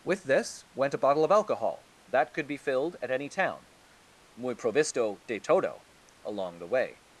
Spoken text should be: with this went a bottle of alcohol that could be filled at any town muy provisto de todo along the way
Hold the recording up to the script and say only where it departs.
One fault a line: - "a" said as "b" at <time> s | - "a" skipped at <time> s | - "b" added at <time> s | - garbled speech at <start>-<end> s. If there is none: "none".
none